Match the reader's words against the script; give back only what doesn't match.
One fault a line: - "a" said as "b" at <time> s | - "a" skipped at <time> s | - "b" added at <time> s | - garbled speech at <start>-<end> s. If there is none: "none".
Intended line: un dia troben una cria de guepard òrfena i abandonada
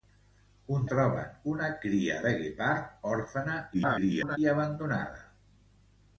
- "dia" skipped at 0.9 s
- garbled speech at 3.7-4.4 s